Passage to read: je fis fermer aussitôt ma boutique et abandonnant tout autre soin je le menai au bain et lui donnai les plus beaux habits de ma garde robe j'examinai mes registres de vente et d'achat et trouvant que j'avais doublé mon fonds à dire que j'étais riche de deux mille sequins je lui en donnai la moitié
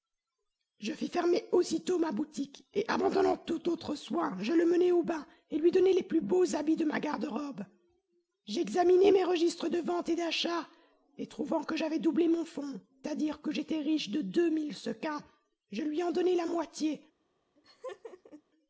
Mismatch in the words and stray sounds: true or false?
true